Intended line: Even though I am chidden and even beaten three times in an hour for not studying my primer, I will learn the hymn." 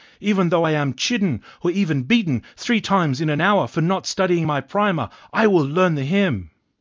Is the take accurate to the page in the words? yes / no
no